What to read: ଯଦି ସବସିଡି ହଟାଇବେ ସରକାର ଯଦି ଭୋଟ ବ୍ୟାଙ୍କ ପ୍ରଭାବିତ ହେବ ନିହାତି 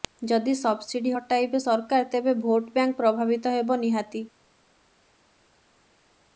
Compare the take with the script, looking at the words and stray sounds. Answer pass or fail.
fail